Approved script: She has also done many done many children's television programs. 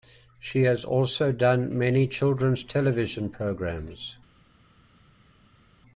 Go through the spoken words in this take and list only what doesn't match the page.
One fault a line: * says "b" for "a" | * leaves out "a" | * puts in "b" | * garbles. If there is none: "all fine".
* leaves out "done many"